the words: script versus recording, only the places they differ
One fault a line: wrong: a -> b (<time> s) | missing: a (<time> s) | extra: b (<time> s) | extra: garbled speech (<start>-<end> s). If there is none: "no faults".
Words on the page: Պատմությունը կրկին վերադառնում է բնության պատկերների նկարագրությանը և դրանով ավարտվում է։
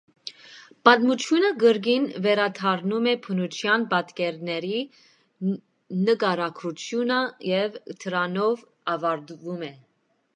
no faults